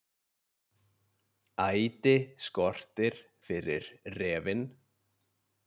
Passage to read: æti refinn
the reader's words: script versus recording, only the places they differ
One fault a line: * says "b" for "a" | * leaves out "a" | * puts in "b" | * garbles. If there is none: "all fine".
* puts in "skortir fyrir"